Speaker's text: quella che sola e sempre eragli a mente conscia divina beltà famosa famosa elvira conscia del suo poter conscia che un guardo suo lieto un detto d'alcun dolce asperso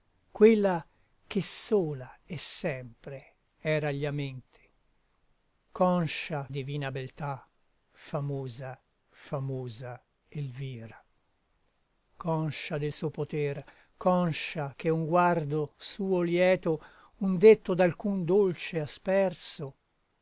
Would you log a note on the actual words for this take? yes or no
no